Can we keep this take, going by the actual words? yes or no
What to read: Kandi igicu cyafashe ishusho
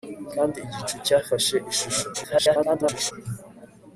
no